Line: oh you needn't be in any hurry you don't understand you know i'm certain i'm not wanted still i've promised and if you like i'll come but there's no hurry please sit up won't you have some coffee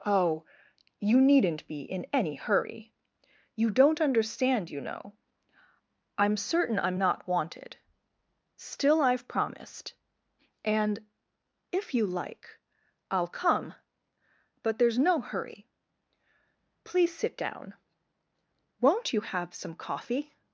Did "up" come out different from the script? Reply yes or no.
yes